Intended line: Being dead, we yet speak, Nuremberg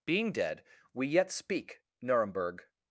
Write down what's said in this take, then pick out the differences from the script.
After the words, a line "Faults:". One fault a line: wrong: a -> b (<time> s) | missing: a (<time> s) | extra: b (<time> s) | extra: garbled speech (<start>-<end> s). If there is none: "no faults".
Being dead, we yet speak, Nuremberg
Faults:
no faults